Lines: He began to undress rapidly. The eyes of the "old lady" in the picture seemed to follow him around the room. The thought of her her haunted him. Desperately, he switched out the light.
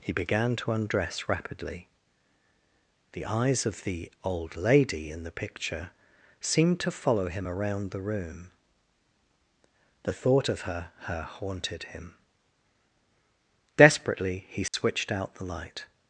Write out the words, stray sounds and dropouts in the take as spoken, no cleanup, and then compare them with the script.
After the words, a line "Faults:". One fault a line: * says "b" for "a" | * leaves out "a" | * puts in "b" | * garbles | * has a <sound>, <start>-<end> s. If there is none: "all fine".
He began to undress rapidly. The eyes of the "old lady" in the picture seemed to follow him around the room. The thought of her her haunted him. Desperately, he switched out the light.
Faults:
* has a dropout, 14.7-14.7 s